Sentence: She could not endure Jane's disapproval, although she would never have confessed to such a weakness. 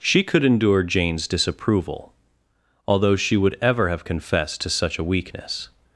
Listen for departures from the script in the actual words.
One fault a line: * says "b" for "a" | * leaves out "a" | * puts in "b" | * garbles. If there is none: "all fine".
* leaves out "not"
* says "ever" for "never"